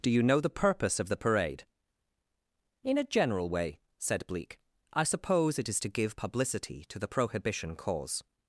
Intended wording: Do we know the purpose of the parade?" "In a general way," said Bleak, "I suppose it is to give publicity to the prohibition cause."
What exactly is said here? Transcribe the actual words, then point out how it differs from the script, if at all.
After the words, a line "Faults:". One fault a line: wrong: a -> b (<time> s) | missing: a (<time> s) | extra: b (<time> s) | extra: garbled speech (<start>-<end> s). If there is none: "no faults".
Do you know the purpose of the parade?" "In a general way," said Bleak, "I suppose it is to give publicity to the prohibition cause."
Faults:
wrong: we -> you (0.1 s)